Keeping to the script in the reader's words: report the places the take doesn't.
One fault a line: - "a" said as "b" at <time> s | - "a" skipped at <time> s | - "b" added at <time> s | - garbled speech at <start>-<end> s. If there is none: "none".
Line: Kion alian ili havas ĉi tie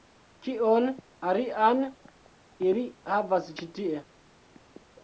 none